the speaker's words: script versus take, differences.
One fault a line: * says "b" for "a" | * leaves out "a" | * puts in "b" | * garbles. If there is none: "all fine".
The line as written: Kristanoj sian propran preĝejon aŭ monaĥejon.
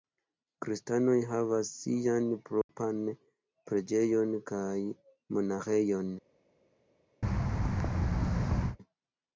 * puts in "havas"
* says "kaj" for "aŭ"